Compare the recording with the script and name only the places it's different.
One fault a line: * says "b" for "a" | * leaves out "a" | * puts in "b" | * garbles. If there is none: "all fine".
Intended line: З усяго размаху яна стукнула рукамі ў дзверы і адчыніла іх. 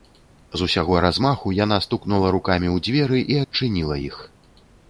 all fine